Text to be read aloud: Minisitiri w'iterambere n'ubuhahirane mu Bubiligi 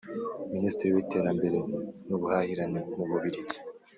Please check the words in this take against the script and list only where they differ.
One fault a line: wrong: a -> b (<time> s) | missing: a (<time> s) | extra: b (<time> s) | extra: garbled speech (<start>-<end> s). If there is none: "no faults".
no faults